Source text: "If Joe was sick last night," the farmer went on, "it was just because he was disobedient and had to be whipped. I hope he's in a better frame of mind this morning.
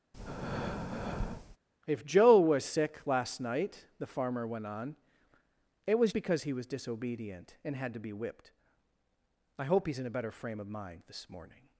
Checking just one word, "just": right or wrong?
wrong